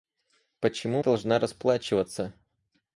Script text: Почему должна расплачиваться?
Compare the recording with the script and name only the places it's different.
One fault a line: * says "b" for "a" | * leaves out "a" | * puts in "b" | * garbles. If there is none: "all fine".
all fine